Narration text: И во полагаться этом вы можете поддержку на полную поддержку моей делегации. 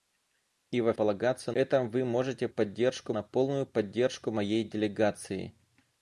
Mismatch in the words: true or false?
false